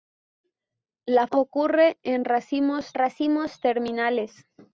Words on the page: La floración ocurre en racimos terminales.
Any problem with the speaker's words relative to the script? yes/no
yes